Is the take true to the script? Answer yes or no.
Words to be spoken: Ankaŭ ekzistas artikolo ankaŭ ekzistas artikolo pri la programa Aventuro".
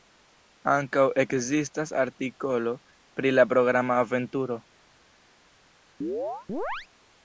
no